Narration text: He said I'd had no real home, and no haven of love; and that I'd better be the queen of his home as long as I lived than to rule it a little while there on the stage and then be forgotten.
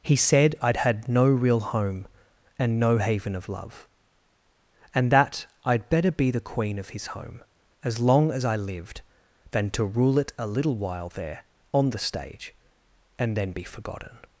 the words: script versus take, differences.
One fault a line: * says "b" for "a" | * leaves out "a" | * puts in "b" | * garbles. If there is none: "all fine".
all fine